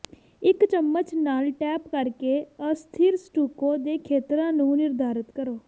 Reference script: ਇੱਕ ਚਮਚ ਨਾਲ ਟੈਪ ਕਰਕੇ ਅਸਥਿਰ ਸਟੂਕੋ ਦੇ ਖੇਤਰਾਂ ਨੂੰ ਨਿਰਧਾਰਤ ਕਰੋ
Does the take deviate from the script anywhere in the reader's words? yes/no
no